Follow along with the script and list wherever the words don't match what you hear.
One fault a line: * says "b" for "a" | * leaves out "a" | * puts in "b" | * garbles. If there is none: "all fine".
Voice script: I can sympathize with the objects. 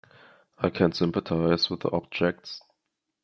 all fine